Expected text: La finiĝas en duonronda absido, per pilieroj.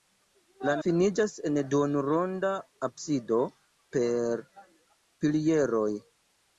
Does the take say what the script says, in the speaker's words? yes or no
yes